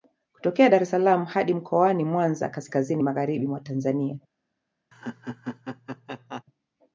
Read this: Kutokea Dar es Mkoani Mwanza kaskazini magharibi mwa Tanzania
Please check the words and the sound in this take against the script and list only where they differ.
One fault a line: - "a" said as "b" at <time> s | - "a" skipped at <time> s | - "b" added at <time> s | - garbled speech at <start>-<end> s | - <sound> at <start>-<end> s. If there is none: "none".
- "salaam hadi" added at 0.9 s
- laugh at 4.9-6.4 s